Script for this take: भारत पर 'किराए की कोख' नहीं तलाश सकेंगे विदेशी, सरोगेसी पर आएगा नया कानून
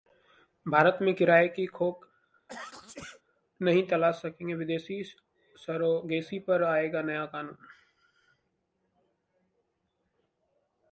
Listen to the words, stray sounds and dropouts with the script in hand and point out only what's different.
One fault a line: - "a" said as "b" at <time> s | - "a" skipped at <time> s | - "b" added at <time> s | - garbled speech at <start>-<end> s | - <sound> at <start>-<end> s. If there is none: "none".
- "पर" said as "में" at 1.0 s
- sneeze at 2.5-3.2 s